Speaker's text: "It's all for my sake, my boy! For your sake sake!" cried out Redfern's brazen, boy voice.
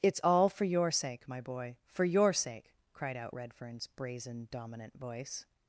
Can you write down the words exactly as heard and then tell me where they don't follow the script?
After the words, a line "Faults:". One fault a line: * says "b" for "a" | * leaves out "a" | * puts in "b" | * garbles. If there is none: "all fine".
"It's all for your sake, my boy! For your sake!" cried out Redfern's brazen, dominant voice.
Faults:
* says "your" for "my"
* leaves out "sake"
* says "dominant" for "boy"